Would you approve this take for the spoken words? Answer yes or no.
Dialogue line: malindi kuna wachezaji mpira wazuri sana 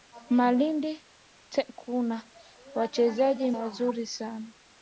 no